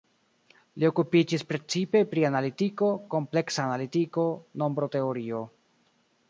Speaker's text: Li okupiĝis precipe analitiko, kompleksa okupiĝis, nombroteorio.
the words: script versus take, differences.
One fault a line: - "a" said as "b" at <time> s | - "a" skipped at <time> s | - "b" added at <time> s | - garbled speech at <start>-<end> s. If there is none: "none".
- "pri" added at 2.1 s
- "okupiĝis" said as "analitiko" at 3.6 s